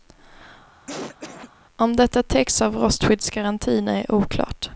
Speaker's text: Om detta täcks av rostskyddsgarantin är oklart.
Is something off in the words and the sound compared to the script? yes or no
yes